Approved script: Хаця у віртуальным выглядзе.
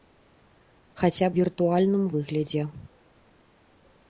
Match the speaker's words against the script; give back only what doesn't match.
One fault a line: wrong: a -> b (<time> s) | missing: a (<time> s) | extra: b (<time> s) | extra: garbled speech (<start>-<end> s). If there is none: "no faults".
no faults